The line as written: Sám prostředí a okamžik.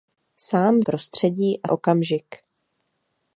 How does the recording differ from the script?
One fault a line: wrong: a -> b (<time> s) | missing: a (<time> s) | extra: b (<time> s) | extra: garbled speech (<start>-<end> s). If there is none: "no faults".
no faults